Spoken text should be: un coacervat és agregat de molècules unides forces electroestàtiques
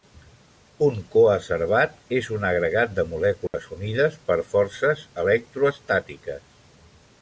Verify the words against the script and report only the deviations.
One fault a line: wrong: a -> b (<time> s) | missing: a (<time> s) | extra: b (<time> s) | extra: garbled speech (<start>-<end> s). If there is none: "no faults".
extra: un (2.4 s)
extra: per (4.3 s)